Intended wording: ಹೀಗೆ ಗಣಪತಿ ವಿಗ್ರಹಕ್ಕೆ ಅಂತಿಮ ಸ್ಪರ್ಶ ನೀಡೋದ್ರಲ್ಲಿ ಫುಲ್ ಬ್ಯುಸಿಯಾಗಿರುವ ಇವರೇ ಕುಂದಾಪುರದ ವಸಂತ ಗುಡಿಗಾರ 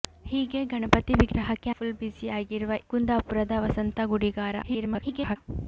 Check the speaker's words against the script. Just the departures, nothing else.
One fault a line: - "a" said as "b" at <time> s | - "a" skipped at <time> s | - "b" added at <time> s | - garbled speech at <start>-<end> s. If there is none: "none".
- "ಅಂತಿಮ ಸ್ಪರ್ಶ ನೀಡೋದ್ರಲ್ಲಿ" skipped at 1.7 s
- "ಇವರೇ" skipped at 2.7 s
- garbled speech at 4.6-5.4 s